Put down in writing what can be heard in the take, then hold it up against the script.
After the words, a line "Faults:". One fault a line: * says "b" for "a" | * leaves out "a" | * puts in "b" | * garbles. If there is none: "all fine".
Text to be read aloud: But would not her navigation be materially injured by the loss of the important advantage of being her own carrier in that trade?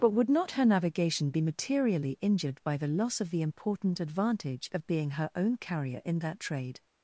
But would not her navigation be materially injured by the loss of the important advantage of being her own carrier in that trade?
Faults:
all fine